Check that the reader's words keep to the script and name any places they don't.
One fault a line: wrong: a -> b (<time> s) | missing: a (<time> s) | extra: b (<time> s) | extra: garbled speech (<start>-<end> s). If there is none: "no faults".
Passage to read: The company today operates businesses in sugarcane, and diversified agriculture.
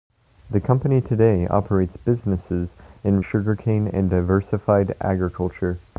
no faults